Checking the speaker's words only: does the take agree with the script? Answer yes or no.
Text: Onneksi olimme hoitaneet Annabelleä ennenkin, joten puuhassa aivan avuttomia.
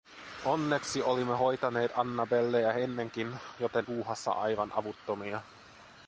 yes